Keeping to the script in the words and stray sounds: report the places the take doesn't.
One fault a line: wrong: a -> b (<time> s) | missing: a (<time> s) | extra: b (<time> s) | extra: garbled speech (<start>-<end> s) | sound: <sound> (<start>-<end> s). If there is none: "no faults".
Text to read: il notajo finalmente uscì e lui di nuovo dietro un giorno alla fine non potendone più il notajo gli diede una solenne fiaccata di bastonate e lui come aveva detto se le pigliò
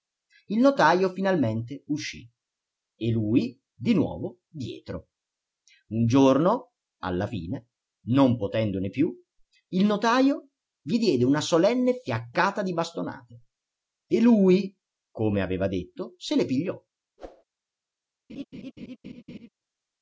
sound: whoosh (17.2-17.4 s)
sound: laugh (18.3-19.5 s)